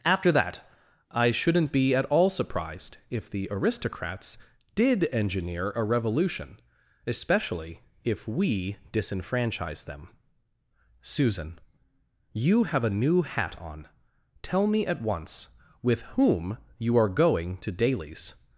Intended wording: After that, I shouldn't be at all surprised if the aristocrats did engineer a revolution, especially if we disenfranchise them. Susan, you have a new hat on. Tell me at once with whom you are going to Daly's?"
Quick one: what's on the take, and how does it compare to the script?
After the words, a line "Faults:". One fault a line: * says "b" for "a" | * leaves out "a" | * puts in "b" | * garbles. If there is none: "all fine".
After that, I shouldn't be at all surprised if the aristocrats did engineer a revolution, especially if we disenfranchise them. Susan, you have a new hat on. Tell me at once with whom you are going to Daly's?"
Faults:
all fine